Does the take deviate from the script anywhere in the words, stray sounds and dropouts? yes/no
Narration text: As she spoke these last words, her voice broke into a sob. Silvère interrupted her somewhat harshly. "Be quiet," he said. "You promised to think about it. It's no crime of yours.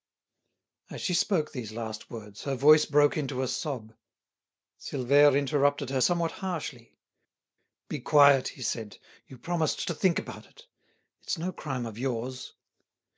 no